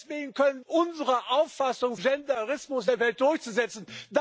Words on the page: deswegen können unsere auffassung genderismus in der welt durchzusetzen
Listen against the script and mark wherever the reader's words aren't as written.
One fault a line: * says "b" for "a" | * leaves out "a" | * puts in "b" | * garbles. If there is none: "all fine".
all fine